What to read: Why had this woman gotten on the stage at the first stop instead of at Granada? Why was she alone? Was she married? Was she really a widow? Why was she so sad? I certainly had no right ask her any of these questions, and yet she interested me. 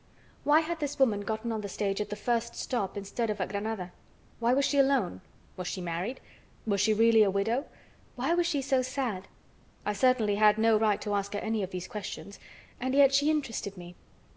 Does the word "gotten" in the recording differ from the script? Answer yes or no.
no